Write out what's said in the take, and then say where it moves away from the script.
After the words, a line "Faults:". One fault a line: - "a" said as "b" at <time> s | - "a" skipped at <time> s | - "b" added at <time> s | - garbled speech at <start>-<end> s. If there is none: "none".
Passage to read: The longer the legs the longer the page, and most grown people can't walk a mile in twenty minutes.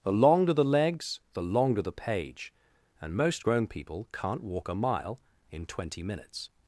The longer the legs the longer the page, and most grown people can't walk a mile in twenty minutes.
Faults:
none